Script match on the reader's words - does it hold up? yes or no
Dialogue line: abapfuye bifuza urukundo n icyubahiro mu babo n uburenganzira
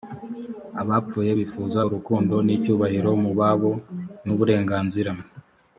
yes